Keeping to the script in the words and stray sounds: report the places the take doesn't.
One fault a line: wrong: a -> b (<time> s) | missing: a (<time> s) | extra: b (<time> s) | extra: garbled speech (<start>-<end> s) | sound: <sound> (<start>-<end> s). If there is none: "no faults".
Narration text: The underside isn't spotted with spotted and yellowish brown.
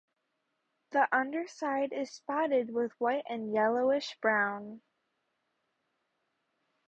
wrong: isn't -> is (1.9 s)
wrong: spotted -> white (3.0 s)